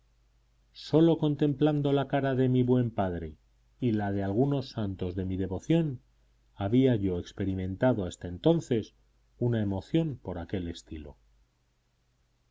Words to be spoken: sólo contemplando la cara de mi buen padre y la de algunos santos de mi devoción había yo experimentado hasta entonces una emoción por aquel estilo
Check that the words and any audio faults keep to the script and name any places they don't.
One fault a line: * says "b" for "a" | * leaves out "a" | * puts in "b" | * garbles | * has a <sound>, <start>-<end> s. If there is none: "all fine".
all fine